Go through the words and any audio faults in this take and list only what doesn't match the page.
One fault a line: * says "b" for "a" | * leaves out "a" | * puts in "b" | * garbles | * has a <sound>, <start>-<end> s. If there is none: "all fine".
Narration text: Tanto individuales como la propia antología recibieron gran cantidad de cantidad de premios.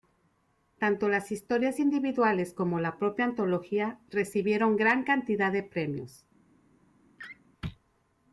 * puts in "las historias"
* leaves out "cantidad de"
* has a laugh, 7.2-7.4 s